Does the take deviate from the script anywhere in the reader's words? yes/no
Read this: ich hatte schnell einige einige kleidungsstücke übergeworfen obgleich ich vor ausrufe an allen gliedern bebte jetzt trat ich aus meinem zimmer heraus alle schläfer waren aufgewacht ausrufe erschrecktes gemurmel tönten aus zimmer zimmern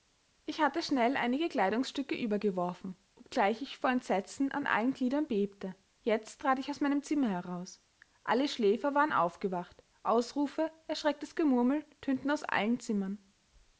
yes